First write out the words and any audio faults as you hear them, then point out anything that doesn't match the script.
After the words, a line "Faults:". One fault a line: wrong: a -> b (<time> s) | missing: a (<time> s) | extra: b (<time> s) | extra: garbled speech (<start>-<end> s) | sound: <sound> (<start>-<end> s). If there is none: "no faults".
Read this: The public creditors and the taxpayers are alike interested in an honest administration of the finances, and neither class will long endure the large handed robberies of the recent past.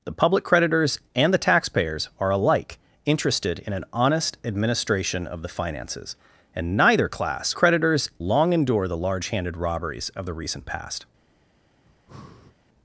The public creditors and the taxpayers are alike interested in an honest administration of the finances, and neither class creditors long endure the large handed robberies of the recent past.
Faults:
wrong: will -> creditors (7.5 s)
sound: breath (11.9-12.6 s)